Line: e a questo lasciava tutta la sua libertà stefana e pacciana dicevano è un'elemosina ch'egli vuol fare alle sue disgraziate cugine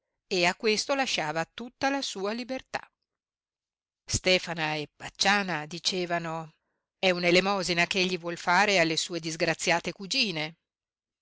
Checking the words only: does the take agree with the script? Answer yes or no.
yes